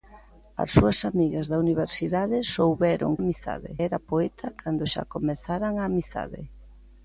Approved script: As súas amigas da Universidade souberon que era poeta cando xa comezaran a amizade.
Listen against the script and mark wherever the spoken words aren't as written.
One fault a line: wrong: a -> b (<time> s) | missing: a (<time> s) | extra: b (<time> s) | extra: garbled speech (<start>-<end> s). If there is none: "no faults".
wrong: que -> amizade (3.2 s)